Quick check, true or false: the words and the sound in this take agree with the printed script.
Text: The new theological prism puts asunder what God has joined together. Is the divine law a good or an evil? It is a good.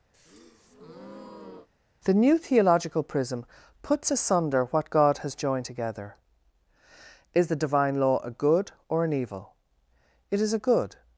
false